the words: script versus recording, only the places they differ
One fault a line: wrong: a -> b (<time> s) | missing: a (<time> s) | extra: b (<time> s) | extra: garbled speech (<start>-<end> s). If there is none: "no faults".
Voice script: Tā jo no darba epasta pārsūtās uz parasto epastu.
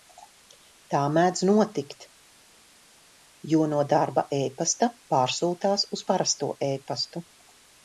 extra: mēdz notikt (1.2 s)